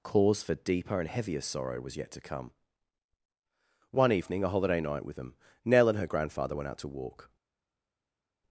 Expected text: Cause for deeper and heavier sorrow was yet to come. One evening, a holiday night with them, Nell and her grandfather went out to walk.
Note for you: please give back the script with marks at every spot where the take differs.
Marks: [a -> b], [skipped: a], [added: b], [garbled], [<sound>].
Cause for deeper and heavier sorrow was yet to come. One evening, a holiday night with them, Nell and her grandfather went out to walk.